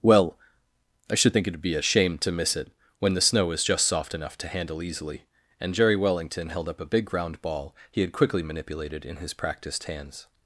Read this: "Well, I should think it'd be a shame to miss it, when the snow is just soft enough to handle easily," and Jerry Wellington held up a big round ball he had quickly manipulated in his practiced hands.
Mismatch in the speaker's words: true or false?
false